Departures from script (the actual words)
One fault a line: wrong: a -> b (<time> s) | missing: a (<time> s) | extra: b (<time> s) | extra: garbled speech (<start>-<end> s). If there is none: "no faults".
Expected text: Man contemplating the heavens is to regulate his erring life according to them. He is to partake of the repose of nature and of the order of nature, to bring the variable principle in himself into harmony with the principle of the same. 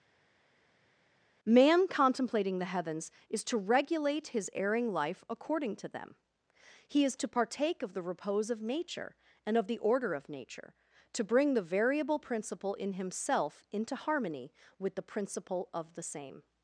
no faults